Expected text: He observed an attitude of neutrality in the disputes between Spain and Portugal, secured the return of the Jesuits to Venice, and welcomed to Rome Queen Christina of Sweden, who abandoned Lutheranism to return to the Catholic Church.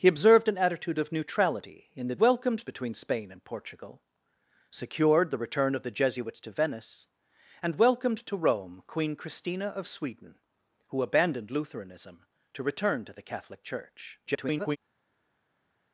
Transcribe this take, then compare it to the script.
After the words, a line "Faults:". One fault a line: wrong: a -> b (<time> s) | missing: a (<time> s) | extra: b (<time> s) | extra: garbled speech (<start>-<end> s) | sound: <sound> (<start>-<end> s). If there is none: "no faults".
He observed an attitude of neutrality in the welcomed between Spain and Portugal, secured the return of the Jesuits to Venice, and welcomed to Rome Queen Christina of Sweden, who abandoned Lutheranism to return to the Catholic Church. [garbled]
Faults:
wrong: disputes -> welcomed (2.2 s)
extra: garbled speech (14.3-14.8 s)